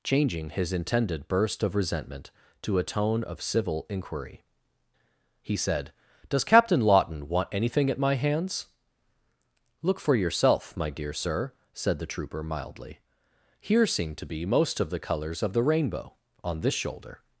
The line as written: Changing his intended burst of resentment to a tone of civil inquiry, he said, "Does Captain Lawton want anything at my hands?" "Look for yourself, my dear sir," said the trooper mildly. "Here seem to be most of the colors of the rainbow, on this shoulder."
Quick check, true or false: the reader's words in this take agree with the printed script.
true